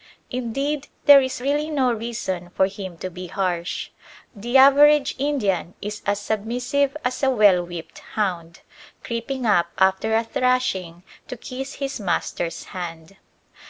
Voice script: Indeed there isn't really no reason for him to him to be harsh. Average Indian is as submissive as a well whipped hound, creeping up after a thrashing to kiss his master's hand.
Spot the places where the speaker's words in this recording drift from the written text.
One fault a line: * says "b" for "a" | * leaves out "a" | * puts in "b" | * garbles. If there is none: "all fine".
* says "is" for "isn't"
* leaves out "him to"
* puts in "The"